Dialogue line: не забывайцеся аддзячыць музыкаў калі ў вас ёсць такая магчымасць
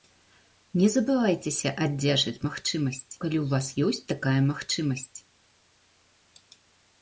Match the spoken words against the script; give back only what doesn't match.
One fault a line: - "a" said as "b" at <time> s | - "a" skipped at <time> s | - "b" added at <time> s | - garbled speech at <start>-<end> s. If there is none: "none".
- "музыкаў" said as "магчымасць" at 2.5 s